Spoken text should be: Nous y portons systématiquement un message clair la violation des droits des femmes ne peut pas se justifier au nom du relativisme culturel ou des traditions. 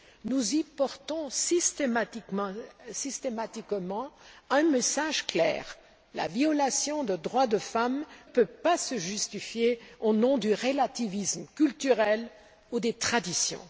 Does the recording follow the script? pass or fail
fail